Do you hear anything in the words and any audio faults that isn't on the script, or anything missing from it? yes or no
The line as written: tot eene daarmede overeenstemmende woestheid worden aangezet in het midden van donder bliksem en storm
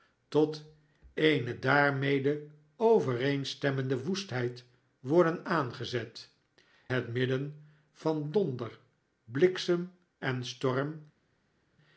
yes